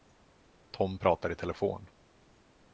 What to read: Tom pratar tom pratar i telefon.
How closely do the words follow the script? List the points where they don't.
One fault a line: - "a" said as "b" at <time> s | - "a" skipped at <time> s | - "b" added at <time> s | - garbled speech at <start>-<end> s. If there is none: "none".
- "tom pratar" skipped at 1.3 s